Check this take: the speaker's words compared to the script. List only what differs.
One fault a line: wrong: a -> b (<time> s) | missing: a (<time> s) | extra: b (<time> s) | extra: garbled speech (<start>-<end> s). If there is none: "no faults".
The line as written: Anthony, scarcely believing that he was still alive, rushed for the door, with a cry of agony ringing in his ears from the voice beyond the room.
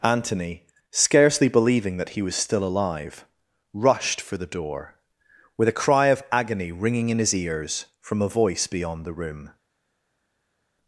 wrong: the -> a (8.2 s)